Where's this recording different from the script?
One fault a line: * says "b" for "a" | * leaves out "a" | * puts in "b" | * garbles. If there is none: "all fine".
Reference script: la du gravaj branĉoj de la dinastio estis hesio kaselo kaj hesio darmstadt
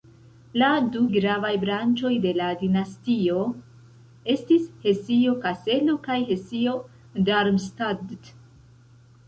all fine